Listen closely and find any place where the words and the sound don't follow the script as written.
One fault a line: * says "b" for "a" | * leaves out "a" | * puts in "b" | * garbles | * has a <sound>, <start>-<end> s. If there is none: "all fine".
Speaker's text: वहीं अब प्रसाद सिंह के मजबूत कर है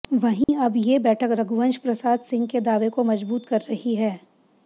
* has a dropout, 0.4-0.5 s
* puts in "ये बैठक रघुवंश"
* puts in "दावे को"
* puts in "रही"